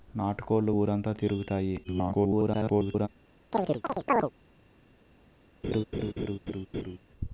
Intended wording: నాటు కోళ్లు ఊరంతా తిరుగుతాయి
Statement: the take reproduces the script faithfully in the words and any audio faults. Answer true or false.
false